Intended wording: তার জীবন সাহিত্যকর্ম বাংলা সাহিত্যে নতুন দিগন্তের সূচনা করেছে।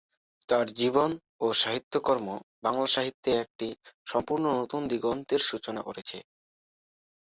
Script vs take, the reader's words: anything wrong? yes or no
yes